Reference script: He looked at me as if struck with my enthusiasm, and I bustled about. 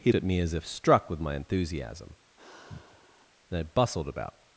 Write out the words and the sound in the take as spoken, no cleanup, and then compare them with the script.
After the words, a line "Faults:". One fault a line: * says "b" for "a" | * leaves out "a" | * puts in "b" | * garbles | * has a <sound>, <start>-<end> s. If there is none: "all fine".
He at me as if struck with my enthusiasm, and I bustled about.
Faults:
* leaves out "looked"
* has a sigh, 2.4-3.3 s